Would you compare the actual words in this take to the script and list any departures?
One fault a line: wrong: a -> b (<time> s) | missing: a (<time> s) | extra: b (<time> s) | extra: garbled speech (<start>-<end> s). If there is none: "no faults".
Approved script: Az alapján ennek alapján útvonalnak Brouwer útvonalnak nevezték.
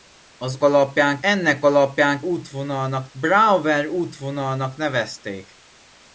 no faults